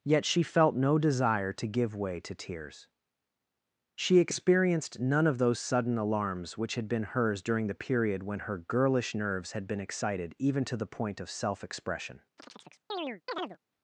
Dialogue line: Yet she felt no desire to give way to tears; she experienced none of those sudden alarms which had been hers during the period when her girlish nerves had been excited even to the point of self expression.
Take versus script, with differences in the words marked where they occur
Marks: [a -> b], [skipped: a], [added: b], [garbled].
Yet she felt no desire to give way to tears; she experienced none of those sudden alarms which had been hers during the period when her girlish nerves had been excited even to the point of self expression.